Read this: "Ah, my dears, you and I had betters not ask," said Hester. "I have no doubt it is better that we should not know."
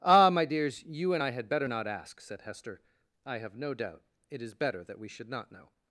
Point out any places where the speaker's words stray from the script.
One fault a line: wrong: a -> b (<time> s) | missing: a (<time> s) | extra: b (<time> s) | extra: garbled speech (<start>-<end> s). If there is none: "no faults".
wrong: betters -> better (1.5 s)